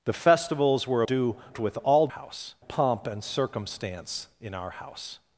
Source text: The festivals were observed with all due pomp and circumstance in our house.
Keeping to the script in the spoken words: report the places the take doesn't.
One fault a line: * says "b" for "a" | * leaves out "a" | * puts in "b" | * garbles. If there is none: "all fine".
* says "due" for "observed"
* says "house" for "due"